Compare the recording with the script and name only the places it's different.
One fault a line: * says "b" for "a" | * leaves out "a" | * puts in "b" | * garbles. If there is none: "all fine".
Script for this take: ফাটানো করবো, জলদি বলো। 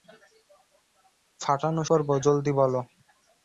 all fine